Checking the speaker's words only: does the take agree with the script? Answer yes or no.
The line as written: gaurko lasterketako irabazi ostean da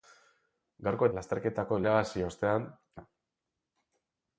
yes